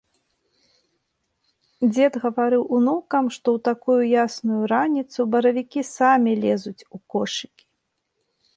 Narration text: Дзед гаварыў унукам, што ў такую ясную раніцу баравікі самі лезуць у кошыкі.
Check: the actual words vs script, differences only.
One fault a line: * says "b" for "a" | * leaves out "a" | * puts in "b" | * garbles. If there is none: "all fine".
all fine